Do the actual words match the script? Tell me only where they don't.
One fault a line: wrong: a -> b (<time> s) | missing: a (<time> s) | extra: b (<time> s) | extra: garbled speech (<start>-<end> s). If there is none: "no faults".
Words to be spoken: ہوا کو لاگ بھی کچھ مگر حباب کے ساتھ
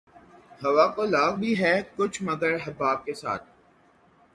extra: ہے (1.6 s)